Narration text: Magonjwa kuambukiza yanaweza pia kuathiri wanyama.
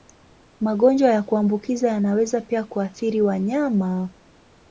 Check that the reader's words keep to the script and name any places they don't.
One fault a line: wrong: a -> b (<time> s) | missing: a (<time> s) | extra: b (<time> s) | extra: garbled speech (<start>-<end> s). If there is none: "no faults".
extra: ya (1.1 s)